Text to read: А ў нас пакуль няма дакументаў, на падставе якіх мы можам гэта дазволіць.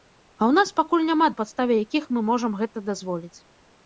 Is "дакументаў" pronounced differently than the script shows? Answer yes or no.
yes